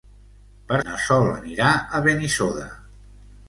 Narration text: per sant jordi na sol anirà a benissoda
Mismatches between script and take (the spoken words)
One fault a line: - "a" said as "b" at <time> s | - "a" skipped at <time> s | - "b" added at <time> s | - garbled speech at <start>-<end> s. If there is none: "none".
- "sant jordi" skipped at 0.8 s